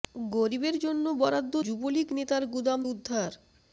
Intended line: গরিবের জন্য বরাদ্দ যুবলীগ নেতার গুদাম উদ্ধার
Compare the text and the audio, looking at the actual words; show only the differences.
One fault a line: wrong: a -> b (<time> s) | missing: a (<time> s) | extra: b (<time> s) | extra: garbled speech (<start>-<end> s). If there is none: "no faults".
no faults